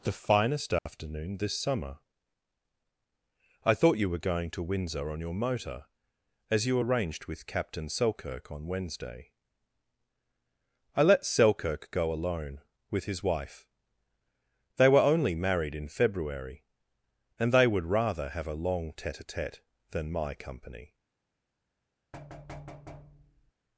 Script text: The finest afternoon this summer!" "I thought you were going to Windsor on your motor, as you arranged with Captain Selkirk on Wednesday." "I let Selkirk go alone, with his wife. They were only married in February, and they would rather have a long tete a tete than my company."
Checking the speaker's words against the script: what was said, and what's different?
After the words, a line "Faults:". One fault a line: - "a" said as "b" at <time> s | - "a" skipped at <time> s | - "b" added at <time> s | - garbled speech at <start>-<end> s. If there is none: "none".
The finest afternoon this summer!" "I thought you were going to Windsor on your motor, as you arranged with Captain Selkirk on Wednesday." "I let Selkirk go alone, with his wife. They were only married in February, and they would rather have a long tete a tete than my company."
Faults:
none